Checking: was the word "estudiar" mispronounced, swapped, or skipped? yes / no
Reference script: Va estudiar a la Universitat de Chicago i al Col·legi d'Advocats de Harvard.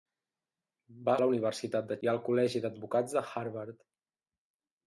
yes